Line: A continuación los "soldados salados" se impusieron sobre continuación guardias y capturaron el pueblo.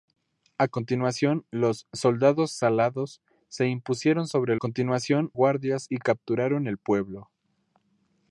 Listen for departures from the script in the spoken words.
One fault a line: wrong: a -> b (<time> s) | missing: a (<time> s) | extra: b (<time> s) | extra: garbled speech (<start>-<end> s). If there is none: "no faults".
no faults